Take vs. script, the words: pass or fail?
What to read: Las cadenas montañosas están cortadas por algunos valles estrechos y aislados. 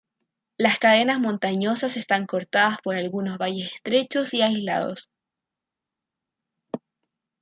pass